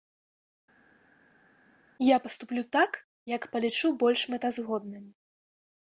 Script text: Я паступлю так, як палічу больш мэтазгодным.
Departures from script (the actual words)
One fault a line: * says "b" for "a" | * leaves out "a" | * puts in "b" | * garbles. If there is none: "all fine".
all fine